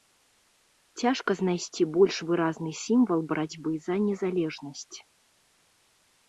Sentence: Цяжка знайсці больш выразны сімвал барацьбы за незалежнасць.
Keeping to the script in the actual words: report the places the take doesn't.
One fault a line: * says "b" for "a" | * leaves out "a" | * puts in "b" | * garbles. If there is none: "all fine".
all fine